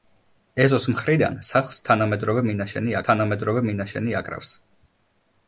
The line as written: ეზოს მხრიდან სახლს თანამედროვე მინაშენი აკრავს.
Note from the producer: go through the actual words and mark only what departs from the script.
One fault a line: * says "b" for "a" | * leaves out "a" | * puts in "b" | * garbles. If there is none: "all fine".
* puts in "თანამედროვე მინაშენი"